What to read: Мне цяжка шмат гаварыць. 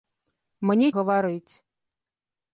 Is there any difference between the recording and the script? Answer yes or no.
yes